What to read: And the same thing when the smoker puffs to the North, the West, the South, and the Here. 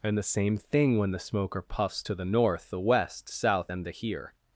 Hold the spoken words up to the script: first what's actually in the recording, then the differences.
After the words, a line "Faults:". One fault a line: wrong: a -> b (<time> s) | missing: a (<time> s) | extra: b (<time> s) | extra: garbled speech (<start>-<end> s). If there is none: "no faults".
And the same thing when the smoker puffs to the North, the West, South, and the Here.
Faults:
missing: the (3.3 s)